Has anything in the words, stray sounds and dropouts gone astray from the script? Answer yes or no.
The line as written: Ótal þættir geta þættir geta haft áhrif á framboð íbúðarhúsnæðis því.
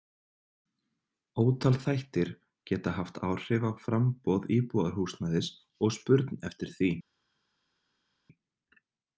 yes